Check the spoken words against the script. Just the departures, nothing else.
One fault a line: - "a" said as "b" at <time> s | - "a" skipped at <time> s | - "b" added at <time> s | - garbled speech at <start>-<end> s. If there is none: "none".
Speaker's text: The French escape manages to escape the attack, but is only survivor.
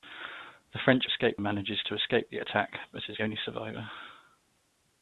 none